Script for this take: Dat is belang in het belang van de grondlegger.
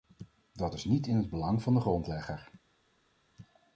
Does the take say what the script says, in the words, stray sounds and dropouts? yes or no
no